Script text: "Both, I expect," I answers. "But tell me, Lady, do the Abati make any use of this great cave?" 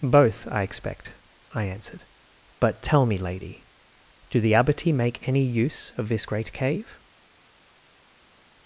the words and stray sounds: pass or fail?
fail